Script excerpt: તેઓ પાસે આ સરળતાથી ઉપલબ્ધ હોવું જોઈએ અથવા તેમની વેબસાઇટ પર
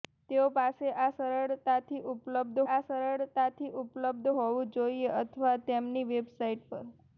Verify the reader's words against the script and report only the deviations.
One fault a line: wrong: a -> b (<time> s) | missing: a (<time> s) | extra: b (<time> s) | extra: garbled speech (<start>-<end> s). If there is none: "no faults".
extra: આ સરળતાથી ઉપલબ્ધ (2.7 s)